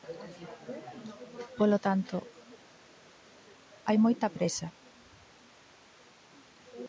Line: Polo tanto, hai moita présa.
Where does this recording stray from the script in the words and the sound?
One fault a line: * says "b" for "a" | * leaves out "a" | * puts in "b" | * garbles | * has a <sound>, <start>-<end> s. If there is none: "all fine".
all fine